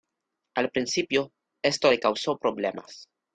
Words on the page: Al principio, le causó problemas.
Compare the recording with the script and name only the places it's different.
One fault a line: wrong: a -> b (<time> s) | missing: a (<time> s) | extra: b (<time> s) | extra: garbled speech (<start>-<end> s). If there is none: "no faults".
extra: esto (1.6 s)